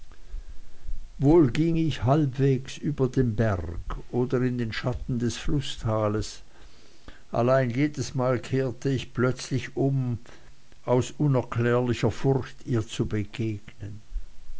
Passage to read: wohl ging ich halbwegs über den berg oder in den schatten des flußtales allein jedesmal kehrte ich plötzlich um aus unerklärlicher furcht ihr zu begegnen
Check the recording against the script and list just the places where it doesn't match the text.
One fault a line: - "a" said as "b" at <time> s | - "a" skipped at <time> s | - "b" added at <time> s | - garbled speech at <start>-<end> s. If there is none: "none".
none